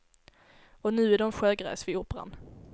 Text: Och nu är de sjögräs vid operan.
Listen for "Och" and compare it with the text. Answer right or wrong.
right